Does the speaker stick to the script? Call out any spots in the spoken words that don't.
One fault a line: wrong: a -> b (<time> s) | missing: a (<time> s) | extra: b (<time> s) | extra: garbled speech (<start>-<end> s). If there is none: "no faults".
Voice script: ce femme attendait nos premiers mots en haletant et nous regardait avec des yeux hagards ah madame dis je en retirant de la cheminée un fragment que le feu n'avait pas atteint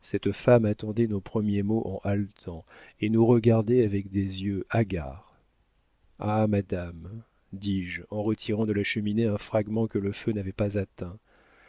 wrong: ce -> cette (0.0 s)